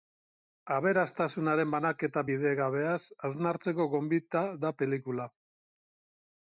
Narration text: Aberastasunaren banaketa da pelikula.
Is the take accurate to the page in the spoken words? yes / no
no